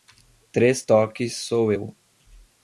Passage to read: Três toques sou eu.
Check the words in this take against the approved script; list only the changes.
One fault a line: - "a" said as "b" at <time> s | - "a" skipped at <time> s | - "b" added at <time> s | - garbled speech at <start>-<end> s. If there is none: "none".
none